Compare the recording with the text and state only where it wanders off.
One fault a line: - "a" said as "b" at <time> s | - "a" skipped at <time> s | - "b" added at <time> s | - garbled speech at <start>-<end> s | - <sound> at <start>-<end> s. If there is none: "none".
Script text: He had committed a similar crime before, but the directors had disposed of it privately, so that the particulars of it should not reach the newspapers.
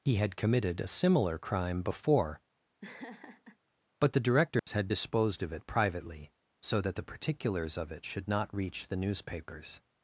- laugh at 2.8-3.6 s
- dropout at 4.6-4.7 s